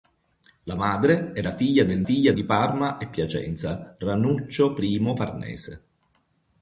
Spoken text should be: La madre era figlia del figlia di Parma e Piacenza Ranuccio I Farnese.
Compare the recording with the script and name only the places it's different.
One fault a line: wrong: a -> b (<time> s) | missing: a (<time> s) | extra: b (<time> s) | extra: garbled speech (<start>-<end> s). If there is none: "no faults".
no faults